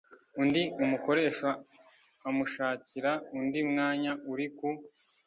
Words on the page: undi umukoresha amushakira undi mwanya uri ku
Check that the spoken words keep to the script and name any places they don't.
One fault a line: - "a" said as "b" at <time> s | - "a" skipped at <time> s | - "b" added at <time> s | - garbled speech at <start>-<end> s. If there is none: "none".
none